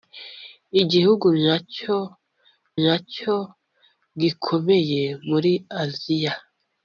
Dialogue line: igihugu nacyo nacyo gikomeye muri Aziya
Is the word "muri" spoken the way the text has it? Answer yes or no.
yes